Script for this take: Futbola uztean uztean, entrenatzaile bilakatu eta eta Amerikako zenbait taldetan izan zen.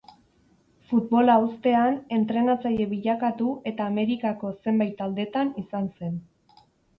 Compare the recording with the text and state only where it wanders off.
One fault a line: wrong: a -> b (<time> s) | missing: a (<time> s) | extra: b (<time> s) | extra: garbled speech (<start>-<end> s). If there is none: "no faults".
missing: uztean (2.0 s)
missing: eta (3.9 s)